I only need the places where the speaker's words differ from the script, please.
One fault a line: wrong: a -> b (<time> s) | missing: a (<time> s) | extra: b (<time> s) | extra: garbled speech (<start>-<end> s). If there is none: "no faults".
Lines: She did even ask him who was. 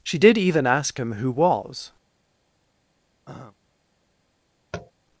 no faults